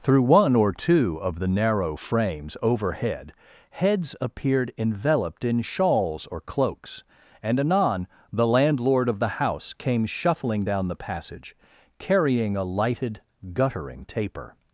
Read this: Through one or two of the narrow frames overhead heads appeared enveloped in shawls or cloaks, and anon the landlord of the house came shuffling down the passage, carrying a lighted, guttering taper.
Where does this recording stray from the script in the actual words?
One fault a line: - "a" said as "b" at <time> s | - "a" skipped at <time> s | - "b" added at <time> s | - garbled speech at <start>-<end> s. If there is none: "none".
none